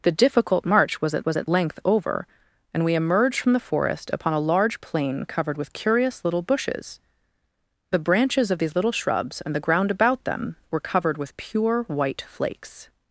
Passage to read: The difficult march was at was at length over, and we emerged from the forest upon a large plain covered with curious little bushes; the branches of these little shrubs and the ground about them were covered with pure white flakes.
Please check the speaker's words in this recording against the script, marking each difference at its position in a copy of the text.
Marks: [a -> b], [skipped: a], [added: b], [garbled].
The difficult march was at was at length over, and we emerged from the forest upon a large plain covered with curious little bushes; the branches of these little shrubs and the ground about them were covered with pure white flakes.